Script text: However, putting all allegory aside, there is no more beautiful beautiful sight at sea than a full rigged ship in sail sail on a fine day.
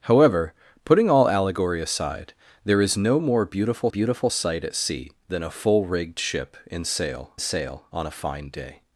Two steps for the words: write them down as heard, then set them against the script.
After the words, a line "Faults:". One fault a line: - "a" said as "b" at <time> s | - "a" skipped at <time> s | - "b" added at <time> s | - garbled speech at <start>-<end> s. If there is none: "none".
However, putting all allegory aside, there is no more beautiful beautiful sight at sea than a full rigged ship in sail sail on a fine day.
Faults:
none